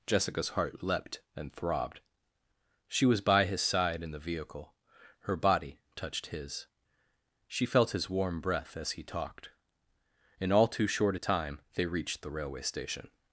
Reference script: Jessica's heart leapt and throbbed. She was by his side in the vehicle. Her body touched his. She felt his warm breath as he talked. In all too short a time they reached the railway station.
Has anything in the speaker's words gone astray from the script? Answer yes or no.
no